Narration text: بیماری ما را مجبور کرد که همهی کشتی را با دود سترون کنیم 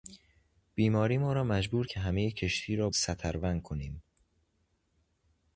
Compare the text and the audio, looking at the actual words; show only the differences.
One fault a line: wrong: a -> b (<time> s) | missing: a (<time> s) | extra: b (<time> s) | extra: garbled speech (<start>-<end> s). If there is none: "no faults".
missing: کرد (1.9 s)
missing: با دود (2.9 s)